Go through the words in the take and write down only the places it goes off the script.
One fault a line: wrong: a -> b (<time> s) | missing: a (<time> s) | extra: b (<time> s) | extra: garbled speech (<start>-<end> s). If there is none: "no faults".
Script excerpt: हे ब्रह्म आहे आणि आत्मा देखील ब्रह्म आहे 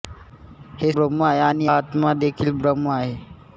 no faults